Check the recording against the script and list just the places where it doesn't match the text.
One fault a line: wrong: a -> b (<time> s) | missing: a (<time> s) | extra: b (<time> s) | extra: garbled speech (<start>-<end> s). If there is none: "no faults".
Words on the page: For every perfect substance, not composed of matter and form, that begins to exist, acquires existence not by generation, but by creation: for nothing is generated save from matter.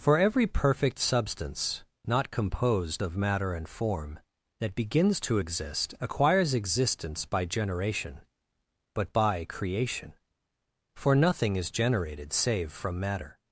missing: not (7.3 s)